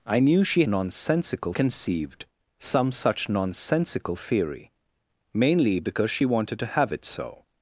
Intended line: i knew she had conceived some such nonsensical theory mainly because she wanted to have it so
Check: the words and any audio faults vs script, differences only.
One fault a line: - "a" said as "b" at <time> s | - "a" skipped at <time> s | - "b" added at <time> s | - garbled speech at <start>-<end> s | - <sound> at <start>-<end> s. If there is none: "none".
- "had" said as "nonsensical" at 0.7 s